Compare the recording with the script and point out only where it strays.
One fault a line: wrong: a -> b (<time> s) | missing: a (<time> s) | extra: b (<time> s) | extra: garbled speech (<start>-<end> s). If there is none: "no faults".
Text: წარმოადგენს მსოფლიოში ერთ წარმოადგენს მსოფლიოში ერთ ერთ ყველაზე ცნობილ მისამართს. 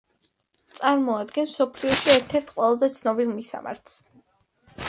missing: წარმოადგენს მსოფლიოში ერთ (2.4 s)